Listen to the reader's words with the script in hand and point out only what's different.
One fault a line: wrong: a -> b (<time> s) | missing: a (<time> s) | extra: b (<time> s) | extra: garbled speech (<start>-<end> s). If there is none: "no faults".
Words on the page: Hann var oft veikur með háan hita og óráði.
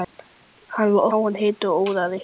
missing: oft veikur með (1.1 s)